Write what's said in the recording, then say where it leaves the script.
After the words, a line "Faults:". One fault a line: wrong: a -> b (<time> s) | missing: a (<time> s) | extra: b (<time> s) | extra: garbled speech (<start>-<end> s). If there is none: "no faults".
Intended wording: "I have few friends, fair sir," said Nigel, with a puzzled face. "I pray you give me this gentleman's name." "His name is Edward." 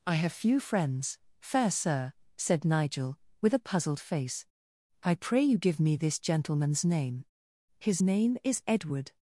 "I have few friends, fair sir," said Nigel, with a puzzled face. "I pray you give me this gentleman's name." "His name is Edward."
Faults:
no faults